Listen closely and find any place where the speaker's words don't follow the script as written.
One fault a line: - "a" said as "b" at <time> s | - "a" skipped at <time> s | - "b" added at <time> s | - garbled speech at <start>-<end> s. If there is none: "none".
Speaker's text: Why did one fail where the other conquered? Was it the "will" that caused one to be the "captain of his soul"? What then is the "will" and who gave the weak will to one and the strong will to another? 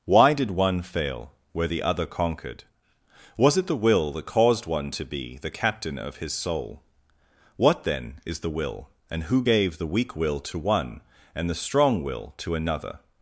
none